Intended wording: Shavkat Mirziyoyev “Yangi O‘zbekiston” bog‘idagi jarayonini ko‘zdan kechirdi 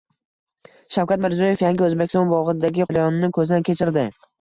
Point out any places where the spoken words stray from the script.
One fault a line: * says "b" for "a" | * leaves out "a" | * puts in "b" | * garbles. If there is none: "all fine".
all fine